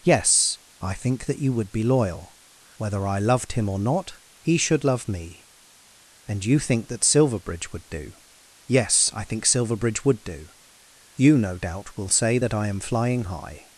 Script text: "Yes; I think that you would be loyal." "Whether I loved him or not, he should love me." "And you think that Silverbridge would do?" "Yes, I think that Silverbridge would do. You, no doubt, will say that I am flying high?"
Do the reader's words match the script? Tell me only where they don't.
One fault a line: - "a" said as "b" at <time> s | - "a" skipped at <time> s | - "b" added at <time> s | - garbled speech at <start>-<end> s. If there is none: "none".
- "that" skipped at 9.4 s